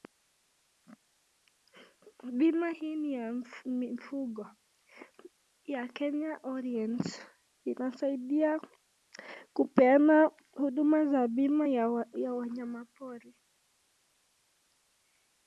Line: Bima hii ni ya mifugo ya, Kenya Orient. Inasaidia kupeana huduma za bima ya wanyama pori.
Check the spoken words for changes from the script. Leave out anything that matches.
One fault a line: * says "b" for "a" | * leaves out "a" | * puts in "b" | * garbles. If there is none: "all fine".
all fine